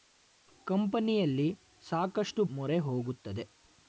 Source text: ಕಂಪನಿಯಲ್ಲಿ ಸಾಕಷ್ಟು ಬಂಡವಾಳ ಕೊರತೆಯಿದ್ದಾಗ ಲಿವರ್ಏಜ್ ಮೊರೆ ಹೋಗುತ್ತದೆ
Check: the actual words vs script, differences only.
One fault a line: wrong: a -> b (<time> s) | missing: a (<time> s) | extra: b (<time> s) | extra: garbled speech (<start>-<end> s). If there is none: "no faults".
missing: ಬಂಡವಾಳ ಕೊರತೆಯಿದ್ದಾಗ ಲಿವರ್ಏಜ್ (2.4 s)